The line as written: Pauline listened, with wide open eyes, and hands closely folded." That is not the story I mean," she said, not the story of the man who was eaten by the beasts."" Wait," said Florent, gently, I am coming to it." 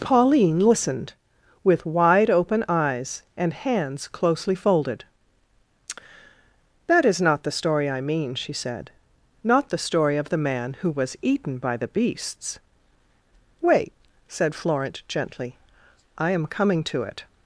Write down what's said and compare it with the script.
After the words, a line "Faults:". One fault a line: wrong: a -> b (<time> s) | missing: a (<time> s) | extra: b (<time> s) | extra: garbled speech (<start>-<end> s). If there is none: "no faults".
Pauline listened, with wide open eyes, and hands closely folded." That is not the story I mean," she said, not the story of the man who was eaten by the beasts."" Wait," said Florent, gently, I am coming to it."
Faults:
no faults